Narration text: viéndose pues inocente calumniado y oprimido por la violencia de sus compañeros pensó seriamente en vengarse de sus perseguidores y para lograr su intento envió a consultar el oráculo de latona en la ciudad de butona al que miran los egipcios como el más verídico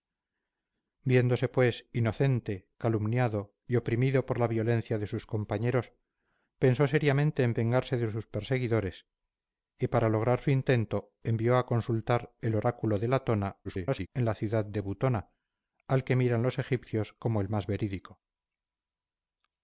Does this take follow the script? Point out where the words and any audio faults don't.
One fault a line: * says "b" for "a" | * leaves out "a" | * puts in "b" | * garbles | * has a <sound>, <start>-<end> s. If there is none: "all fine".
* garbles